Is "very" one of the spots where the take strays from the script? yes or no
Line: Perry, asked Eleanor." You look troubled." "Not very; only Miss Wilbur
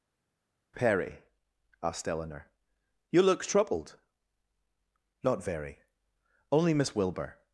no